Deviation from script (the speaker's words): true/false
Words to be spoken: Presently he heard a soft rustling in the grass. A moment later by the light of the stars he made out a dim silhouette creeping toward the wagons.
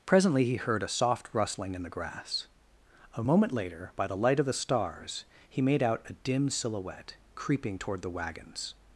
false